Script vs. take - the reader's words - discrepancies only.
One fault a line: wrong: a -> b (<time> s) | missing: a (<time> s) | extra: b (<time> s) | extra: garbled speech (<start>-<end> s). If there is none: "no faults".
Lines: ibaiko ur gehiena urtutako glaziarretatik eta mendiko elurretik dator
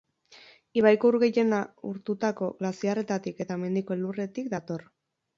no faults